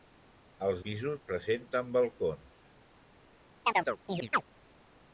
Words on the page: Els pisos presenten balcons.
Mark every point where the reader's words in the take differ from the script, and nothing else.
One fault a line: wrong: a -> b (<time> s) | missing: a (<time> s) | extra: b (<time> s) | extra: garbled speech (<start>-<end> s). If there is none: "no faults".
no faults